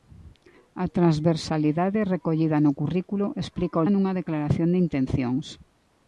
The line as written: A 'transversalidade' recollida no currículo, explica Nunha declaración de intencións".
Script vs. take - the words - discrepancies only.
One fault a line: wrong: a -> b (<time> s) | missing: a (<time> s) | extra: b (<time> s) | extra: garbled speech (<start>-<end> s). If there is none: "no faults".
no faults